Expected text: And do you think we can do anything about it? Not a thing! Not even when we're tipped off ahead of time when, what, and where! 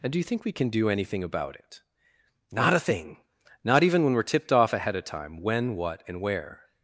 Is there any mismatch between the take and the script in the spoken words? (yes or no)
no